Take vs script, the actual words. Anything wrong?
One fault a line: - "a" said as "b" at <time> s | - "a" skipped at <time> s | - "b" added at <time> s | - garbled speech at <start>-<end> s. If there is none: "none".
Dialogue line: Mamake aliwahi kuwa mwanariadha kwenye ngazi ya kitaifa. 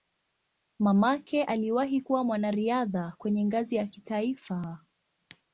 none